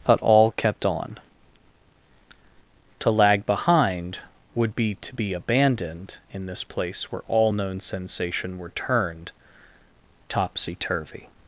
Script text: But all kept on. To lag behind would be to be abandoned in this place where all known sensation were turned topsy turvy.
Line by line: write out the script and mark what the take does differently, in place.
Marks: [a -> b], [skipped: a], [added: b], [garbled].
But all kept on. To lag behind would be to be abandoned in this place where all known sensation were turned topsy turvy.